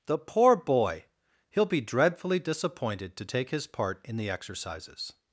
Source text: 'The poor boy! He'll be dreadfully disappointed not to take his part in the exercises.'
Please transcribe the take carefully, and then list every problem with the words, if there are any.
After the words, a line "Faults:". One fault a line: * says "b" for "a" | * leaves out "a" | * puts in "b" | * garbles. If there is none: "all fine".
'The poor boy! He'll be dreadfully disappointed to take his part in the exercises.'
Faults:
* leaves out "not"